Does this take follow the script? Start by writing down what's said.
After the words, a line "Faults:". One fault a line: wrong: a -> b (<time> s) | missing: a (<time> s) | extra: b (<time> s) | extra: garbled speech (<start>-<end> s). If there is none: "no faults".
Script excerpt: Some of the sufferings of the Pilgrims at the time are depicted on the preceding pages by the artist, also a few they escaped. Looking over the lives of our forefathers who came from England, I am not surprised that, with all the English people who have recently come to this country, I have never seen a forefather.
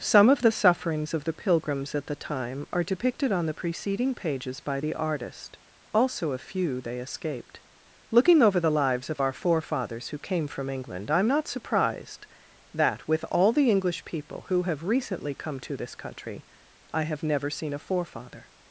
Some of the sufferings of the Pilgrims at the time are depicted on the preceding pages by the artist, also a few they escaped. Looking over the lives of our forefathers who came from England, I am not surprised that, with all the English people who have recently come to this country, I have never seen a forefather.
Faults:
no faults